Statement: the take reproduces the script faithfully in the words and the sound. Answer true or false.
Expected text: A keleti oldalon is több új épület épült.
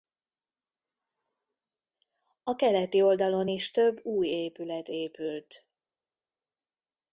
true